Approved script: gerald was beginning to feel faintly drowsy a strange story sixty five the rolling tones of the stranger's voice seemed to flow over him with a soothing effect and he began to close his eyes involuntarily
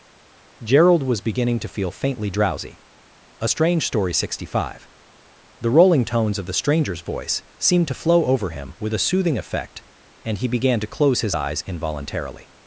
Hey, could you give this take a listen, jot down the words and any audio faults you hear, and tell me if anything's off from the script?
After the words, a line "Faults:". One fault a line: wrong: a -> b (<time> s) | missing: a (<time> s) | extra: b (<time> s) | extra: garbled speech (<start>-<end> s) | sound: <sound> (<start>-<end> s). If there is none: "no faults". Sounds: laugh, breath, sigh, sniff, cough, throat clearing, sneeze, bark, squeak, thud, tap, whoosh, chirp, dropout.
gerald was beginning to feel faintly drowsy a strange story sixty five the rolling tones of the stranger's voice seemed to flow over him with a soothing effect and he began to close his eyes involuntarily
Faults:
no faults